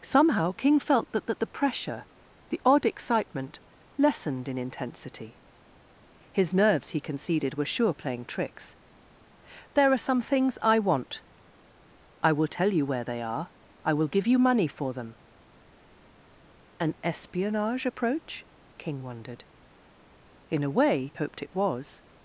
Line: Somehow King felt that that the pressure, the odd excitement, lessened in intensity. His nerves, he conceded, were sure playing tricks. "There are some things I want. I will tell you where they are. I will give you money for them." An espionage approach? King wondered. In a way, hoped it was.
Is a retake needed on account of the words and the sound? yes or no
no